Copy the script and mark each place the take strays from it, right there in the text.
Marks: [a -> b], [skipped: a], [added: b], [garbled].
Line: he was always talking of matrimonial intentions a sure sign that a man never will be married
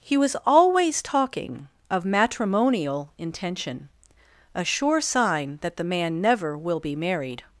he was always talking of matrimonial [intentions -> intention] a sure sign that [a -> the] man never will be married